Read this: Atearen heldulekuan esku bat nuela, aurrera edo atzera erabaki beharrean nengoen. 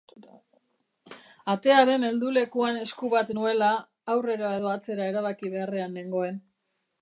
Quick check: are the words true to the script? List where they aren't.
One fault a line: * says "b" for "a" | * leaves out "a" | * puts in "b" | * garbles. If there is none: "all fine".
all fine